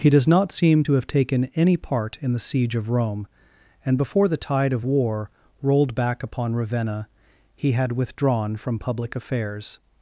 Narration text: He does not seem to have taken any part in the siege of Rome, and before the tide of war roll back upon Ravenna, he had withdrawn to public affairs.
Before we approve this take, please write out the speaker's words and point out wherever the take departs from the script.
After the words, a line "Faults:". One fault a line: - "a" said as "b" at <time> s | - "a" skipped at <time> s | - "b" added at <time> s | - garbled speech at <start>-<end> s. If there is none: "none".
He does not seem to have taken any part in the siege of Rome, and before the tide of war rolled back upon Ravenna, he had withdrawn from public affairs.
Faults:
- "roll" said as "rolled" at 5.6 s
- "to" said as "from" at 8.6 s